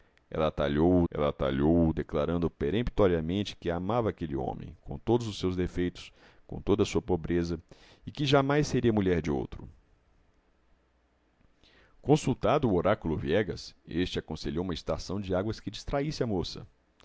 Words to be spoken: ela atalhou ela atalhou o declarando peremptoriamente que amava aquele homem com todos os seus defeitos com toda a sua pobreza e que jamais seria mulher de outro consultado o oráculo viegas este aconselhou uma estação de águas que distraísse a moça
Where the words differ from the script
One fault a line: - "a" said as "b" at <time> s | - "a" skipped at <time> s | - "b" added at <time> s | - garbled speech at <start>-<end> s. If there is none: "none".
none